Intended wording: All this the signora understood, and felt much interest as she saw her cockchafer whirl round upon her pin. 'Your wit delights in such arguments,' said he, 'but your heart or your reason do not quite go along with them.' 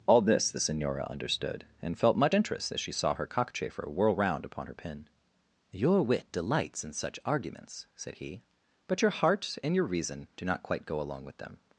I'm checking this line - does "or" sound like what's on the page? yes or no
no